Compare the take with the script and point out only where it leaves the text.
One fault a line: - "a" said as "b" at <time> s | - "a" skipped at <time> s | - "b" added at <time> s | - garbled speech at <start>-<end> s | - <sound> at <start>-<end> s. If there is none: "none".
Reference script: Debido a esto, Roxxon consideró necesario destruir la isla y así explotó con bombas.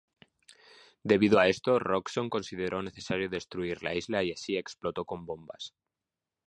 none